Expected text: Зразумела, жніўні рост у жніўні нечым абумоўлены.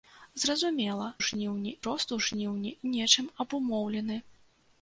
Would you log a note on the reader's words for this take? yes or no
no